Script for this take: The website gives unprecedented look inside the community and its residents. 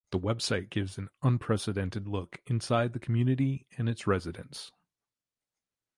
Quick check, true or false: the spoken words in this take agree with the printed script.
false